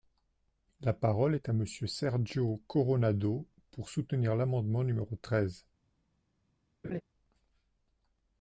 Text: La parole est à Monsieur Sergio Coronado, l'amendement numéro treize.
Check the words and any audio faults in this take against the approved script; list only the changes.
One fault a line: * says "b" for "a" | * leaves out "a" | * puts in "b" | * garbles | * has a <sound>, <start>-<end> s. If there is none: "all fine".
* puts in "pour soutenir"
* has a laugh, 6.8-7.0 s